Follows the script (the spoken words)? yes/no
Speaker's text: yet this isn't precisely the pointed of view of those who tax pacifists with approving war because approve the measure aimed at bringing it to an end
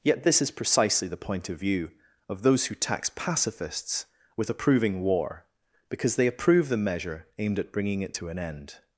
no